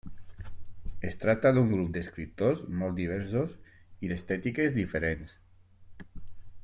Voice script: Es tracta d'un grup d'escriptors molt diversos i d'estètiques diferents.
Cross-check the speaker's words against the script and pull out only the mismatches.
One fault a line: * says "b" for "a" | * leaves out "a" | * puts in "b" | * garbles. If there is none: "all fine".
all fine